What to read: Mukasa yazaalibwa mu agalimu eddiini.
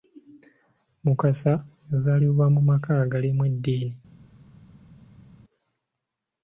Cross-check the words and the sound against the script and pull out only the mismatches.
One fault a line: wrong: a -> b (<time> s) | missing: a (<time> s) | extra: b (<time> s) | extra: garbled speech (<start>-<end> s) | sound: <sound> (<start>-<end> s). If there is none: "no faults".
extra: maka (2.7 s)